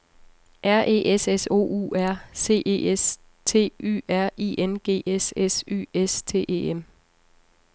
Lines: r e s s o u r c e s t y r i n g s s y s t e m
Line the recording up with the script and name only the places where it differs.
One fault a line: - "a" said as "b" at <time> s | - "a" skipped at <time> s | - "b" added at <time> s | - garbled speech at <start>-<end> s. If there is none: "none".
none